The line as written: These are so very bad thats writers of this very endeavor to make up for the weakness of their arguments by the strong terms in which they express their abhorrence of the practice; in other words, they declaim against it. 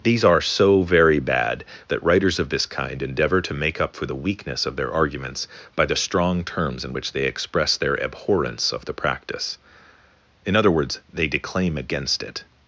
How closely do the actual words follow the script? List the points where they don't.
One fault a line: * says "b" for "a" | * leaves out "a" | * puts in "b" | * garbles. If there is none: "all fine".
* says "that" for "thats"
* says "kind" for "very"